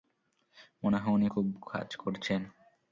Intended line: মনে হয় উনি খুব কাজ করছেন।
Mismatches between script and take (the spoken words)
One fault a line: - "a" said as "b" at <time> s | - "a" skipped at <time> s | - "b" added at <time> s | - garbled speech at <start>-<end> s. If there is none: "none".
none